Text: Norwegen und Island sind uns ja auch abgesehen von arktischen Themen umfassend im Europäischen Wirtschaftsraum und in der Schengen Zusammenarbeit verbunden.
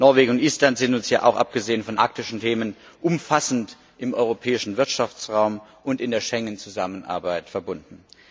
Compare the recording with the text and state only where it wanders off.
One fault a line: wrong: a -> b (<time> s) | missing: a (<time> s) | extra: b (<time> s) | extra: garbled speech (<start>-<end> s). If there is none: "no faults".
no faults